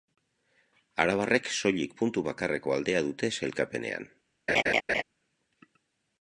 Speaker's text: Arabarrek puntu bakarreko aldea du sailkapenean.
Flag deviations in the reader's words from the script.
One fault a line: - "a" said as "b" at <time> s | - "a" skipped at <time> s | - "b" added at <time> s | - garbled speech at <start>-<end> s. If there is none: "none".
- "soilik" added at 1.6 s
- "du" said as "dute" at 3.1 s